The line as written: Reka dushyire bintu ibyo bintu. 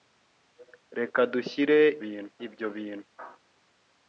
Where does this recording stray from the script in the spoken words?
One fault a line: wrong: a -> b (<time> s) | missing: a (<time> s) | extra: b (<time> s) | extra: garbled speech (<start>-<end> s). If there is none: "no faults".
no faults